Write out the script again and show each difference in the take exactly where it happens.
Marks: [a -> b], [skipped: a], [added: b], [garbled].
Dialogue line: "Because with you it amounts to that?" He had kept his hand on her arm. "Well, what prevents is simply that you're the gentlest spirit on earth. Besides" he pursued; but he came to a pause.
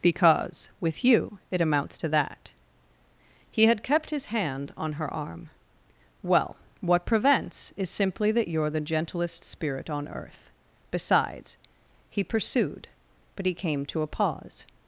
"Because with you it amounts to that?" He had kept his hand on her arm. "Well, what prevents is simply that you're the gentlest spirit on earth. Besides" he pursued; but he came to a pause.